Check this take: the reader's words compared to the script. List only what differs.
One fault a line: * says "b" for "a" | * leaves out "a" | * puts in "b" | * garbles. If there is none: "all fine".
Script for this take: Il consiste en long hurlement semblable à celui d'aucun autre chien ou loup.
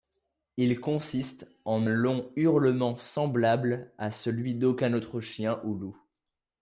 all fine